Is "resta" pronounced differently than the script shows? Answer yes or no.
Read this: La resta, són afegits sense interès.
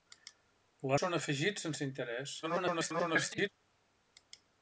yes